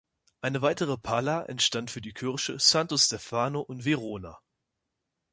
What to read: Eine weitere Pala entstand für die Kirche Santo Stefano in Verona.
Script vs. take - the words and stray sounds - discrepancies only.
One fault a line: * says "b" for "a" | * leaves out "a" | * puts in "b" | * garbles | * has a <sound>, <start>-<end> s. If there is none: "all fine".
all fine